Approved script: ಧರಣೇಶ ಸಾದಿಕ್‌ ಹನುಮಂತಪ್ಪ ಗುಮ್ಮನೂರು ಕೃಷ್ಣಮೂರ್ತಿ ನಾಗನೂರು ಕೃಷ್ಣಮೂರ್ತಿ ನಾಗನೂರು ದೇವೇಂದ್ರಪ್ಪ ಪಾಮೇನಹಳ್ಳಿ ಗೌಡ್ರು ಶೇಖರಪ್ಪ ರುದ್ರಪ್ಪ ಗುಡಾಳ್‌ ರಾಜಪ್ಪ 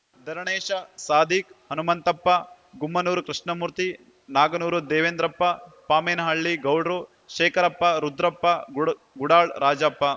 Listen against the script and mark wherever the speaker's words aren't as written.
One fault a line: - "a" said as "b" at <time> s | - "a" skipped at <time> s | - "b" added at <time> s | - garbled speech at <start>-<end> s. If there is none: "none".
- "ಕೃಷ್ಣಮೂರ್ತಿ ನಾಗನೂರು" skipped at 4.8 s